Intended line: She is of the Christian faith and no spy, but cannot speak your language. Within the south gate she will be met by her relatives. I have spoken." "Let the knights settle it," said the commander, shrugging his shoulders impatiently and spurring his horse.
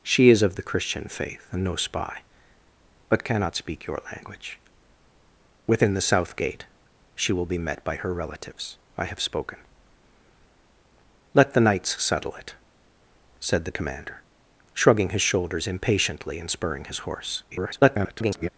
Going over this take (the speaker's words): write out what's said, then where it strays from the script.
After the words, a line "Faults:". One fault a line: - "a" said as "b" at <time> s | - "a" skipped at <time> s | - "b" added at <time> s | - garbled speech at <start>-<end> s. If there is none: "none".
She is of the Christian faith and no spy, but cannot speak your language. Within the south gate she will be met by her relatives. I have spoken." "Let the knights settle it," said the commander, shrugging his shoulders impatiently and spurring his horse. [garbled]
Faults:
- garbled speech at 17.5-18.5 s